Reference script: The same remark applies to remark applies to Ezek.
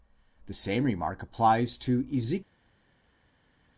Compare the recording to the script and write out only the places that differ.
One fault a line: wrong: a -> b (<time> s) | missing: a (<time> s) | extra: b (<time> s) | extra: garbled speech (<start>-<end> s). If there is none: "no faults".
missing: remark applies to (2.0 s)